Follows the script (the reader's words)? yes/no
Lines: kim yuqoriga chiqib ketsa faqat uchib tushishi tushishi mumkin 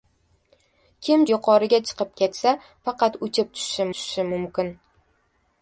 yes